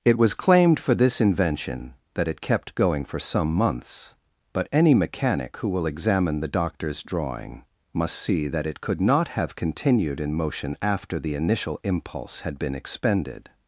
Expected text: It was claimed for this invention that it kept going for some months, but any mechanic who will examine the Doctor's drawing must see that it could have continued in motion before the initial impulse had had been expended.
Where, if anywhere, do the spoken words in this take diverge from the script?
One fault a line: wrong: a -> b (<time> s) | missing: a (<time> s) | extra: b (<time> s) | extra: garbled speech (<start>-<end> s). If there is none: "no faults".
extra: not (9.0 s)
wrong: before -> after (10.8 s)
missing: had (12.6 s)